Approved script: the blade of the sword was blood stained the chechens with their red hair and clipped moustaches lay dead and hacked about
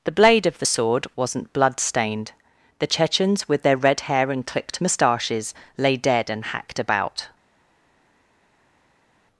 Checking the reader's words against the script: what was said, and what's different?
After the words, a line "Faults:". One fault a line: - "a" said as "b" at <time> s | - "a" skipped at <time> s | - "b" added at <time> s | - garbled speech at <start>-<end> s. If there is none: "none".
the blade of the sword wasn't blood stained the chechens with their red hair and clipped moustaches lay dead and hacked about
Faults:
- "was" said as "wasn't" at 1.2 s